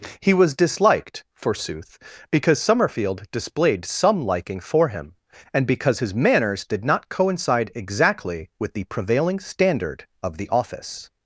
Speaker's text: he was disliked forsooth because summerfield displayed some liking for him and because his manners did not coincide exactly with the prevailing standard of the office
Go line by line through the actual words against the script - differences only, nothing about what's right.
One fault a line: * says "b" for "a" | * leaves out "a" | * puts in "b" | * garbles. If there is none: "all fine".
all fine